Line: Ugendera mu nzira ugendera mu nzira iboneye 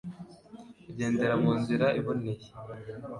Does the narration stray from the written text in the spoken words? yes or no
yes